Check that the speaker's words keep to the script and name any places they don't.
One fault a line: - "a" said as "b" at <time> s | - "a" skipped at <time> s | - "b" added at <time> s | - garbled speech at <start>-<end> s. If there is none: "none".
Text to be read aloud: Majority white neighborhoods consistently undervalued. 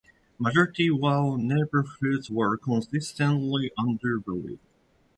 - "were" added at 2.3 s